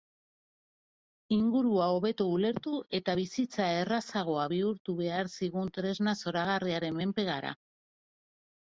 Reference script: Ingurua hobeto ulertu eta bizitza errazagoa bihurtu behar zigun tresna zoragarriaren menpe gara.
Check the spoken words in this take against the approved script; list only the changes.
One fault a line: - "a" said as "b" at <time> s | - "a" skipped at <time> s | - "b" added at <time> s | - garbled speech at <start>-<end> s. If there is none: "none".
none